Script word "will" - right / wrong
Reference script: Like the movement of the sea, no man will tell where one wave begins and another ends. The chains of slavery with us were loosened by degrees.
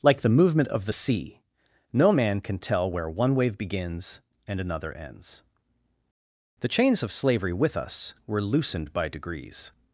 wrong